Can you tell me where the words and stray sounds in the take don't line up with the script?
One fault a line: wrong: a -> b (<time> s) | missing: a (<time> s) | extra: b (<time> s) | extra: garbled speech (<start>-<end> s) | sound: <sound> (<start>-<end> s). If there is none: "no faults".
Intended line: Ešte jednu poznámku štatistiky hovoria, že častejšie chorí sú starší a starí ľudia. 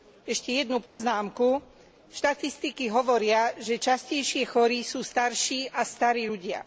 sound: dropout (0.9-1.0 s)